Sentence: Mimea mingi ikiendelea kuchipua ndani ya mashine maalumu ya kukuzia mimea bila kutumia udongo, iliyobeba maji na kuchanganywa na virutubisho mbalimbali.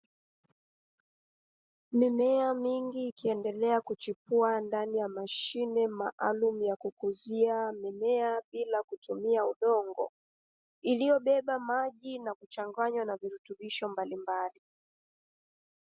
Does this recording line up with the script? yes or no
yes